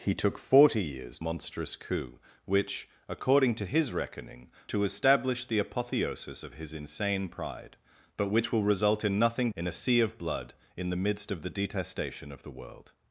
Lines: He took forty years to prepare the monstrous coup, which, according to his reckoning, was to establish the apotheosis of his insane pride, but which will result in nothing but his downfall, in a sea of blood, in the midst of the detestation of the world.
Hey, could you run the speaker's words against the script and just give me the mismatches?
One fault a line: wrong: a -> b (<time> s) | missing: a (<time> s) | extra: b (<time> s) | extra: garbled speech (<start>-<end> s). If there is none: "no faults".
missing: to prepare the (1.2 s)
missing: was (4.5 s)
missing: but his downfall (9.5 s)